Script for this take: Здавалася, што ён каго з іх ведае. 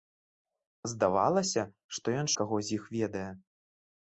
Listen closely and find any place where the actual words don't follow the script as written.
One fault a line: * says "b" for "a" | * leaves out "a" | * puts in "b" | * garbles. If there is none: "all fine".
all fine